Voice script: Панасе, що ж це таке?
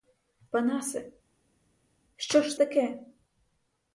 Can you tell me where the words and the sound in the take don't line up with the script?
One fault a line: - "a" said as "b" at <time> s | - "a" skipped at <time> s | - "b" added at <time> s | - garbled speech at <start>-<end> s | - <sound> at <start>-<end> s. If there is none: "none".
- "це" skipped at 2.6 s